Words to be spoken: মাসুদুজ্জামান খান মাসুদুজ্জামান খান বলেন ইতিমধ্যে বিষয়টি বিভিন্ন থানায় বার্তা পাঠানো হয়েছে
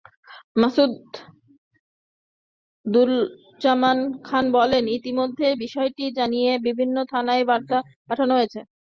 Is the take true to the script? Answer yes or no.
no